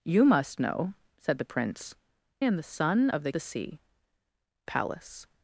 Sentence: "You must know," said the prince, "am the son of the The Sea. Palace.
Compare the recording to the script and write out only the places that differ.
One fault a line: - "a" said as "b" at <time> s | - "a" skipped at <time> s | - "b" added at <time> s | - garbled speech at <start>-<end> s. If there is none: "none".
none